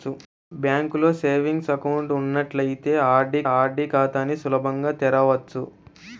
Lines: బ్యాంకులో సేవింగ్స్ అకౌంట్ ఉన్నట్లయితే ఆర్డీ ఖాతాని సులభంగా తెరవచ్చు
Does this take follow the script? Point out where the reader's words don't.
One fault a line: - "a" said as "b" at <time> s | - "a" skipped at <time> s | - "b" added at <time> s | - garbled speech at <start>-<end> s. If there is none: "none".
- "ఆర్డీ" added at 3.5 s